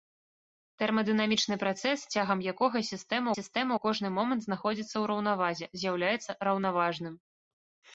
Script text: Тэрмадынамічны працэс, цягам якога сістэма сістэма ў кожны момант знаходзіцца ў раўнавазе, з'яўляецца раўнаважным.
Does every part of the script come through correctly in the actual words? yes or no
yes